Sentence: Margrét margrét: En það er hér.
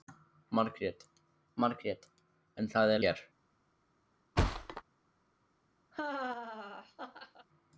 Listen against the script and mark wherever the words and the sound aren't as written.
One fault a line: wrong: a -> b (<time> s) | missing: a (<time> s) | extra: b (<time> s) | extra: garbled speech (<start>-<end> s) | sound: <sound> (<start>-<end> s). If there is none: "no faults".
sound: thud (4.4-4.8 s)
sound: laugh (5.9-7.5 s)